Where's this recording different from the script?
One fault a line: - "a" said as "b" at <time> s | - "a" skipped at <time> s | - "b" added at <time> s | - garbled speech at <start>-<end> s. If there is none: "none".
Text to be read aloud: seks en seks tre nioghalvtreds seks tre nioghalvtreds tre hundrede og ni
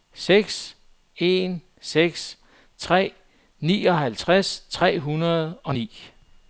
- "seks tre nioghalvtreds" skipped at 4.7 s